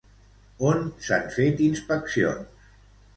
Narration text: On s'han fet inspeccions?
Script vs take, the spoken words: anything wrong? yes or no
no